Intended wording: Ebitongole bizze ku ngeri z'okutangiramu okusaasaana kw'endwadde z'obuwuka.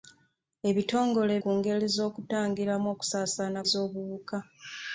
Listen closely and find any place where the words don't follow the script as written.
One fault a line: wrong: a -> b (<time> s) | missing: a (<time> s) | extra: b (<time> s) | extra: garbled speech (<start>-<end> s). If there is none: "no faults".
missing: bizze (1.3 s)
missing: kw'endwadde (3.6 s)